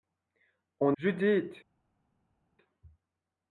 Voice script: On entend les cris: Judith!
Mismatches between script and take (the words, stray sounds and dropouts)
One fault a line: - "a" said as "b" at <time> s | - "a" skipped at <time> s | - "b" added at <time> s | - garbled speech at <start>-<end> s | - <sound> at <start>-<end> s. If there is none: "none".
- "entend les cris" skipped at 1.0 s